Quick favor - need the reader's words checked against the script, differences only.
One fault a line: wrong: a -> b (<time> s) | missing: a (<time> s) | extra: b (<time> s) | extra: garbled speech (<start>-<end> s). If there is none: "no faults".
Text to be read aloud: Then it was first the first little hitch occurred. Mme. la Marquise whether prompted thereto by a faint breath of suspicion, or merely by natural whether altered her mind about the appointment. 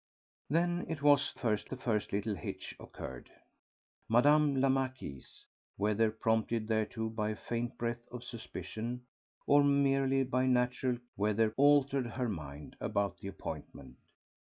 no faults